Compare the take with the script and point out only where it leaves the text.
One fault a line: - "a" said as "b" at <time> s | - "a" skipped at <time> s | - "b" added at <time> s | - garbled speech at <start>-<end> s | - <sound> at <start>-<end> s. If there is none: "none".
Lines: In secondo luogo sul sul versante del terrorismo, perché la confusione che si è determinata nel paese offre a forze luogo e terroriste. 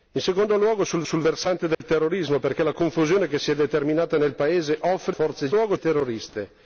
- dropout at 1.7-1.8 s